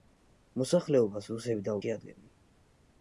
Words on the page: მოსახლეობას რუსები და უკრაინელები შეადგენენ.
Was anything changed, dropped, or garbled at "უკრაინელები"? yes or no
yes